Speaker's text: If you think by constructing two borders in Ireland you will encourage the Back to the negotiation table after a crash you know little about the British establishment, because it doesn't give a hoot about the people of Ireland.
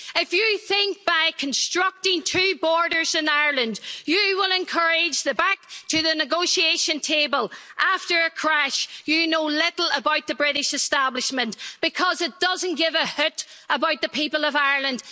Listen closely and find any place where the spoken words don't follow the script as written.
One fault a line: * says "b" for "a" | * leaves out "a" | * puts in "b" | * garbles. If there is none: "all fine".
all fine